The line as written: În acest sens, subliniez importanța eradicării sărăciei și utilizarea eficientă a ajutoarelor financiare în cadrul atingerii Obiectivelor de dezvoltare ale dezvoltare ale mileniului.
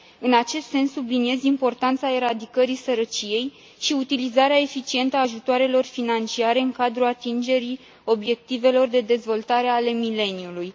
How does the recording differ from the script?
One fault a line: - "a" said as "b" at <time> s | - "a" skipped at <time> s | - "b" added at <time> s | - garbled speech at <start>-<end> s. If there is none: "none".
- "dezvoltare ale" skipped at 9.9 s